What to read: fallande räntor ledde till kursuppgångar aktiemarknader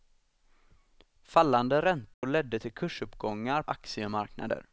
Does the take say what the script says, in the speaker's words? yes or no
yes